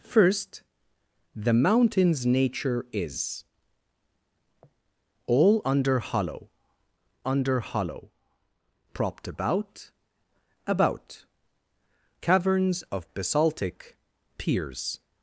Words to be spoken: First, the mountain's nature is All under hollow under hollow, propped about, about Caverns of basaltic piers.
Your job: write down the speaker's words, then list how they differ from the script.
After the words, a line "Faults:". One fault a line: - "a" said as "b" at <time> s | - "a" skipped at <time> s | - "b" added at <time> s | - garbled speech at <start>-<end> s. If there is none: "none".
First, the mountain's nature is All under hollow under hollow, propped about, about Caverns of basaltic piers.
Faults:
none